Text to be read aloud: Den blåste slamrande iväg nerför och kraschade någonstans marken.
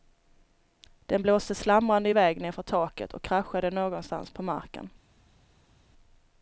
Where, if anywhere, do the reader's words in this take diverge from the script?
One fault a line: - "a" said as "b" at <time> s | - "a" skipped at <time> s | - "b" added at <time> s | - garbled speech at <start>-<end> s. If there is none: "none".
- "taket" added at 2.6 s
- "på" added at 4.3 s